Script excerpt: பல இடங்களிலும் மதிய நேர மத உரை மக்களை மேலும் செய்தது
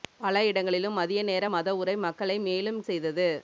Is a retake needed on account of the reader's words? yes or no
no